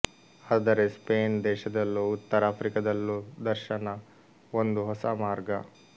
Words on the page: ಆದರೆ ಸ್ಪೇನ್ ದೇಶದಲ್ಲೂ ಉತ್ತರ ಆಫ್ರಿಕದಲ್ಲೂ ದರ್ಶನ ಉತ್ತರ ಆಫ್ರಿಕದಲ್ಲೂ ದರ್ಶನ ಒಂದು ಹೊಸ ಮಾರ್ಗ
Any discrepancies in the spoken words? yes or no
yes